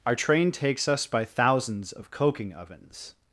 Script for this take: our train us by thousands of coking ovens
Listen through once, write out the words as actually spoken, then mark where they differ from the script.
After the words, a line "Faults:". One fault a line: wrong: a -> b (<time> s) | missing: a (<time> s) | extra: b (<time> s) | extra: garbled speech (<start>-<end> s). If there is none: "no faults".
our train takes us by thousands of coking ovens
Faults:
extra: takes (0.5 s)